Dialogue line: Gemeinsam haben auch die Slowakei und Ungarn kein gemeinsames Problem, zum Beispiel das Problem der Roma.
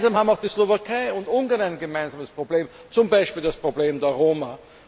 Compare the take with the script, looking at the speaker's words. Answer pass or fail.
fail